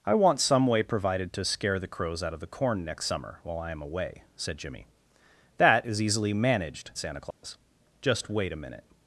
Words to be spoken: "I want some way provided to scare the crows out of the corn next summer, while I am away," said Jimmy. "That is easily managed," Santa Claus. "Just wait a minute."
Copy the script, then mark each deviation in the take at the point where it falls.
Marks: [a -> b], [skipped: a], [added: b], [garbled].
"I want some way provided to scare the crows out of the corn next summer, while I am away," said Jimmy. "That is easily managed," Santa Claus. "Just wait a minute."